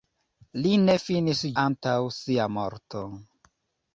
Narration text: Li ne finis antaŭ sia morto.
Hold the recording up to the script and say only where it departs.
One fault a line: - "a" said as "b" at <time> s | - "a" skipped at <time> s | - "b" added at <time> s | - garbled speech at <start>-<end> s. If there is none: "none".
none